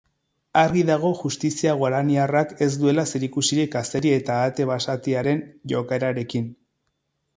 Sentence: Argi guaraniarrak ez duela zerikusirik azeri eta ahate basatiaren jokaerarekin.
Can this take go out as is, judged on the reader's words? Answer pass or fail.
fail